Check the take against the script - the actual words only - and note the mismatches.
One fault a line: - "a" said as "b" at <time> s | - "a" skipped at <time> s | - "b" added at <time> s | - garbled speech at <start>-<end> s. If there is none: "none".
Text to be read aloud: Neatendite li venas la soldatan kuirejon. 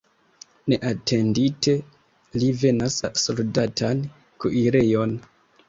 none